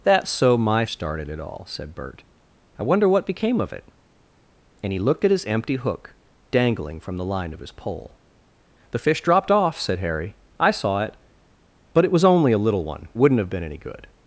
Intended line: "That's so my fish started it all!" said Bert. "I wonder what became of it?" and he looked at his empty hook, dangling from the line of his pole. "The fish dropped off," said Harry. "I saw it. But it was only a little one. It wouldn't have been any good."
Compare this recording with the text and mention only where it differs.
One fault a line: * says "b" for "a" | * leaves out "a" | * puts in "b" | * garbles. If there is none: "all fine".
* leaves out "fish"
* leaves out "It"